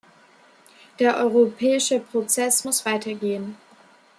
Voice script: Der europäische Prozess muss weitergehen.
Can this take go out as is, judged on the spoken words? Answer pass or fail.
pass